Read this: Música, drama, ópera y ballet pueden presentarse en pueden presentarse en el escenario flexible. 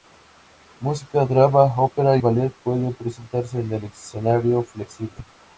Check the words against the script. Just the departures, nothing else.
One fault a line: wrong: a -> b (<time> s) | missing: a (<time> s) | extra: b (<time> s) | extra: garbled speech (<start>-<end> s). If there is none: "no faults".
missing: pueden presentarse en (3.7 s)